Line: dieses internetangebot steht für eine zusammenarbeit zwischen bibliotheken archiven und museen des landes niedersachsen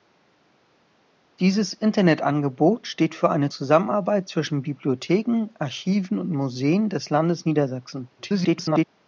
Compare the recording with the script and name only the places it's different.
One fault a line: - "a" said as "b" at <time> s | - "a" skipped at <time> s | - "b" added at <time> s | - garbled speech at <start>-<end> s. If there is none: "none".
- garbled speech at 8.2-8.9 s